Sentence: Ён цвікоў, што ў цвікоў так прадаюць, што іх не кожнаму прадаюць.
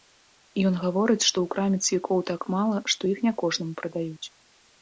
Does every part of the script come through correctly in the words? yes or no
no